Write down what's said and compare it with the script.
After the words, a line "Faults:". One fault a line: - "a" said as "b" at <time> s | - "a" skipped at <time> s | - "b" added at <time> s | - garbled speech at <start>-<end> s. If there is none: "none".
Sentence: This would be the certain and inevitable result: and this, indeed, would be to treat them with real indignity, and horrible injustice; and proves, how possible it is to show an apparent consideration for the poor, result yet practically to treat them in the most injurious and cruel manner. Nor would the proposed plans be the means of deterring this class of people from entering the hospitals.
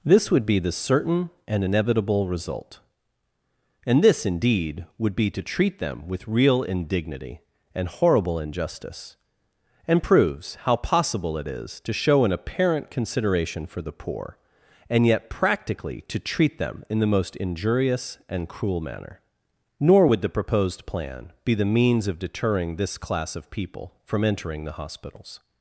This would be the certain and inevitable result: and this, indeed, would be to treat them with real indignity, and horrible injustice; and proves, how possible it is to show an apparent consideration for the poor, and yet practically to treat them in the most injurious and cruel manner. Nor would the proposed plan be the means of deterring this class of people from entering the hospitals.
Faults:
- "result" said as "and" at 14.9 s
- "plans" said as "plan" at 20.8 s